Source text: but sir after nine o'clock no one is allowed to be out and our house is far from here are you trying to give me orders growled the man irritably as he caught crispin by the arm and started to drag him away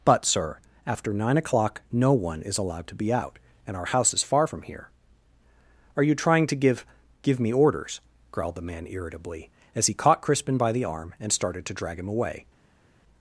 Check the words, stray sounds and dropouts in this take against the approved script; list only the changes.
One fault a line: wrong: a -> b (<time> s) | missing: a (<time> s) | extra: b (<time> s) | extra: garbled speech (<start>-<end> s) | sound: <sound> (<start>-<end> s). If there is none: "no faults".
extra: give (7.2 s)